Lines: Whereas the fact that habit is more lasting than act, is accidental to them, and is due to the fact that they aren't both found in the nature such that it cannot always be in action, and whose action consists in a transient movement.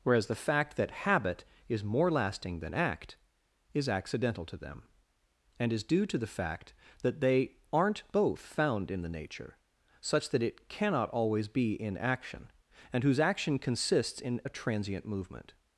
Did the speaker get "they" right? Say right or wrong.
right